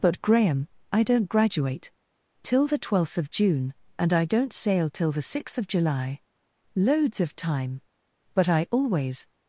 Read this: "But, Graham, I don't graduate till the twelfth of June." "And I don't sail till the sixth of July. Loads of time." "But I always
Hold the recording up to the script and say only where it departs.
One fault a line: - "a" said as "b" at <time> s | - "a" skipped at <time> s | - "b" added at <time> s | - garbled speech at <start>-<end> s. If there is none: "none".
none